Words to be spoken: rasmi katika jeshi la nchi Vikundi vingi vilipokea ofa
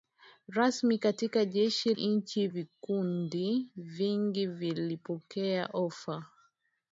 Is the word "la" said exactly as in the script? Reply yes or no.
no